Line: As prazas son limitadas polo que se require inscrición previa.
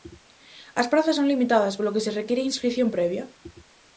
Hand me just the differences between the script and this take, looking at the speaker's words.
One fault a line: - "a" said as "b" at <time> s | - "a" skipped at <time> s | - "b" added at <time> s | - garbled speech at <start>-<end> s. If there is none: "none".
none